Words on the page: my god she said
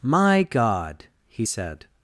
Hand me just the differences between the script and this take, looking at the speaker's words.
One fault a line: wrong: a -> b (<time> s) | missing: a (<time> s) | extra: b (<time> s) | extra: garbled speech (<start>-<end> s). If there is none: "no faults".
wrong: she -> he (1.3 s)